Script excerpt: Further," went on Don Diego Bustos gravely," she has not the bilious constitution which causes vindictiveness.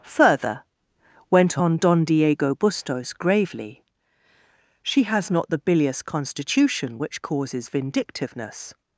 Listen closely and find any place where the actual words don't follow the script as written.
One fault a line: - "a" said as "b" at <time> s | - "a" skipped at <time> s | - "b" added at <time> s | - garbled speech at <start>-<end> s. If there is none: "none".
none